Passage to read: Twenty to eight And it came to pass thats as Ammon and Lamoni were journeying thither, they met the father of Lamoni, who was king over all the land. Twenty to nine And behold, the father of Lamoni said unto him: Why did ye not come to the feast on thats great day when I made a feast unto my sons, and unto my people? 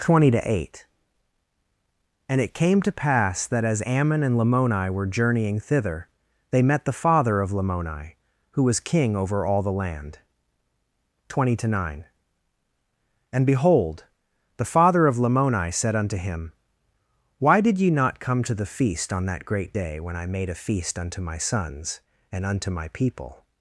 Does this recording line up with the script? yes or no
no